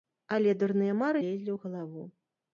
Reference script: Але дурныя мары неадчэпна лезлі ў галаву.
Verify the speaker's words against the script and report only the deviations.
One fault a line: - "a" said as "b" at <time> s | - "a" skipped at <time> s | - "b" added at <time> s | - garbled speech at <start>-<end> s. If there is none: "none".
- "неадчэпна" skipped at 1.2 s